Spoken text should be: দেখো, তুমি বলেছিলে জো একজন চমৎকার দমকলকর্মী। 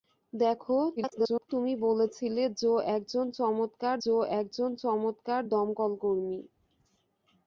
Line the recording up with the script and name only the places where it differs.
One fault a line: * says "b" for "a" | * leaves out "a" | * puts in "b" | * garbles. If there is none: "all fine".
* garbles
* puts in "জো একজন চমৎকার"